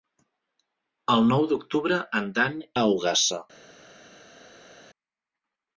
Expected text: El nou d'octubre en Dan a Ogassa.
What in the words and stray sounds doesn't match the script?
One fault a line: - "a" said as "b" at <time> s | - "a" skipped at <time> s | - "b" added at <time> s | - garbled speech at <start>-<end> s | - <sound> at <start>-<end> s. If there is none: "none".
none